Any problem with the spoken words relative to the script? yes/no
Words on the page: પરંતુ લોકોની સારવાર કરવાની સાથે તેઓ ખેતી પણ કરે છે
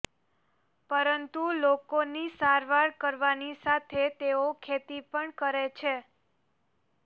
no